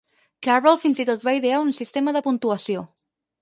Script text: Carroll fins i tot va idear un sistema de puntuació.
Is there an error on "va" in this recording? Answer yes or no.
no